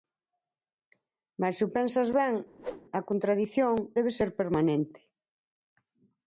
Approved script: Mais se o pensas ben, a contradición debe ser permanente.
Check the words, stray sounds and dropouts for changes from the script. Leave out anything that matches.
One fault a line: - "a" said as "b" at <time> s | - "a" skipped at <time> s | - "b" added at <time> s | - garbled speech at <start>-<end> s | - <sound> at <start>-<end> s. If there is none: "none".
- whoosh at 2.6-2.8 s